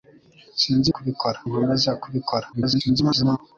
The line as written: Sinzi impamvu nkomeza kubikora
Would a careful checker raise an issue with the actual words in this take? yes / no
yes